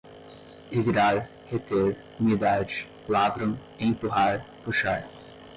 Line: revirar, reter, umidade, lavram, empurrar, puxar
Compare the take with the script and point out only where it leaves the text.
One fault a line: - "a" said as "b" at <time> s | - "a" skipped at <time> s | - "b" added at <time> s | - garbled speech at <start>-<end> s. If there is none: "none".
none